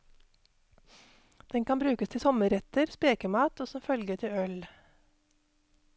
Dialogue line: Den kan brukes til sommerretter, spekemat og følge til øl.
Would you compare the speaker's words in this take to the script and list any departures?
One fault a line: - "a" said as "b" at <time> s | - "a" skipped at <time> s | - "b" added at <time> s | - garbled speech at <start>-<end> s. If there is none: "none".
- "som" added at 3.7 s